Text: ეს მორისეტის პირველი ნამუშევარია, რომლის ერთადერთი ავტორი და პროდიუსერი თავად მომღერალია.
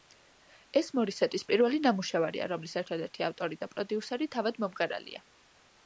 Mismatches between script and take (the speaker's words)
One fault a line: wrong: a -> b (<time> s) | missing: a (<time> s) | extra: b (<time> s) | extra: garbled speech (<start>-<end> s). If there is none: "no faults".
no faults